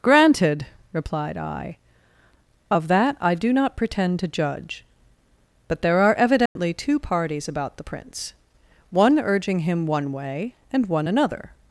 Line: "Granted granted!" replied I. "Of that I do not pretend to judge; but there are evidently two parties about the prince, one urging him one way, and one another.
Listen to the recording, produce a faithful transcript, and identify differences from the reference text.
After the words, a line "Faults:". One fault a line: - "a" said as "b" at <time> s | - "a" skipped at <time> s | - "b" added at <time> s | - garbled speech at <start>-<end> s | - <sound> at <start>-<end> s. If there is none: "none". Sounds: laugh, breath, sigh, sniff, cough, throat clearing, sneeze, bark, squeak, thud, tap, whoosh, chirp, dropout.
"Granted!" replied I. "Of that I do not pretend to judge; but there are evidently two parties about the prince, one urging him one way, and one another.
Faults:
- "granted" skipped at 0.7 s
- dropout at 6.5-6.6 s